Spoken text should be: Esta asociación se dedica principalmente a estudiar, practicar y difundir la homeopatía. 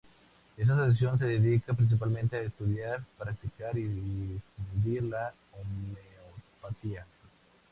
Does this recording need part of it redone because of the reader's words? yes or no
no